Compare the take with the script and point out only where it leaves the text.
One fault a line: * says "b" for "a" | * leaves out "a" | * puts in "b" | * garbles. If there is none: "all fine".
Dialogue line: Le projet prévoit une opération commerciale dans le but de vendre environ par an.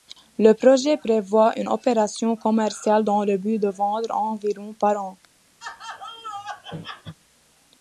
all fine